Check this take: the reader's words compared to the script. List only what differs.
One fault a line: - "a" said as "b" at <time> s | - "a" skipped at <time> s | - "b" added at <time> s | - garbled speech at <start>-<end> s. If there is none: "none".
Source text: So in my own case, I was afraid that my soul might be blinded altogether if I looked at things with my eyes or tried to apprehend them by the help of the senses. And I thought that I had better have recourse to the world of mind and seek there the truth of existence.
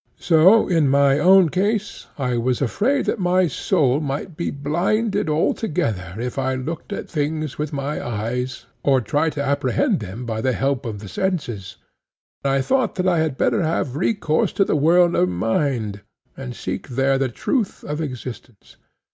- "And" skipped at 11.8 s